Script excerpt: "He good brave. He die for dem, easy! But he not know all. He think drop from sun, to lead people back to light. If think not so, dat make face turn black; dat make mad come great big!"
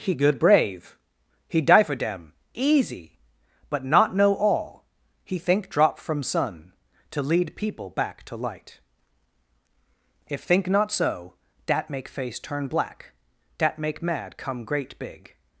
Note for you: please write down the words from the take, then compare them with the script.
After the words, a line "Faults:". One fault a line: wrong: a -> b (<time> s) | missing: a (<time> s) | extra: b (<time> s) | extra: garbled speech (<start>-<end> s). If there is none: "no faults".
"He good brave. He die for dem, easy! But not know all. He think drop from sun, to lead people back to light. If think not so, dat make face turn black; dat make mad come great big!"
Faults:
missing: he (3.9 s)